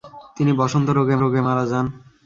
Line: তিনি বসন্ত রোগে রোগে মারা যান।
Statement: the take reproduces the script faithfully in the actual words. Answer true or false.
true